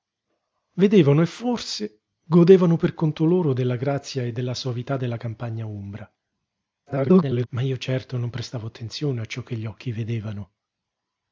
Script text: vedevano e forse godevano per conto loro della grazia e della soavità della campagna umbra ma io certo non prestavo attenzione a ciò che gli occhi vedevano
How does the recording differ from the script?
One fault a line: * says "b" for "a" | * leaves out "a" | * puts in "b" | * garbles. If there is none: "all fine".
* garbles